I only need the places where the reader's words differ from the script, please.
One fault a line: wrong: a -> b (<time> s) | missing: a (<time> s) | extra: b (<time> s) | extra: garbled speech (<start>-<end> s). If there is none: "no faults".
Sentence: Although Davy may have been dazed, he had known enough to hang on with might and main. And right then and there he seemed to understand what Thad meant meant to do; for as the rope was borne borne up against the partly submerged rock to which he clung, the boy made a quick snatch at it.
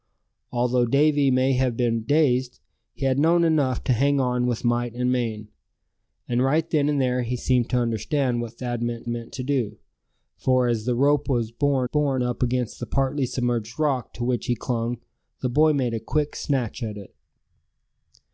no faults